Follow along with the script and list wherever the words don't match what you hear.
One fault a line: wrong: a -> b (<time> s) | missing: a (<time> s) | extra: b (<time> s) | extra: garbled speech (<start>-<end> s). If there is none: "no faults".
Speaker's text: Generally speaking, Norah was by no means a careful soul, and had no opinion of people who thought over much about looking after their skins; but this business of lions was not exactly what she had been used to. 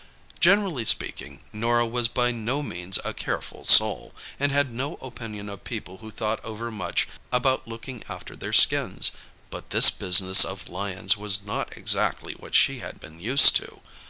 no faults